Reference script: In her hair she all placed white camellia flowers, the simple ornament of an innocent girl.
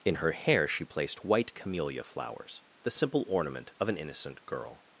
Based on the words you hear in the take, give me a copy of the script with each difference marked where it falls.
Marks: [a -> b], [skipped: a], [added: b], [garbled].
In her hair she [skipped: all] placed white camellia flowers, the simple ornament of an innocent girl.